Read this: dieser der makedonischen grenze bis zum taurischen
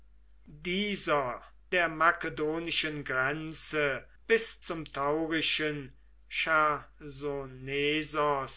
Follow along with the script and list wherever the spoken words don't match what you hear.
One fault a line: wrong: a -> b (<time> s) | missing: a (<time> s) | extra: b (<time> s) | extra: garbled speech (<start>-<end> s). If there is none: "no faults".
no faults